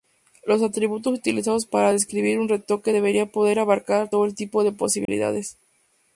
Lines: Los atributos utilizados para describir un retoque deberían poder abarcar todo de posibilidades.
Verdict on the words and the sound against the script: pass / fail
fail